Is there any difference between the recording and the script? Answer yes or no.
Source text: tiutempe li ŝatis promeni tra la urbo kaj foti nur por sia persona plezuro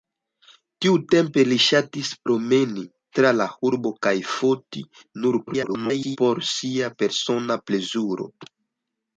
yes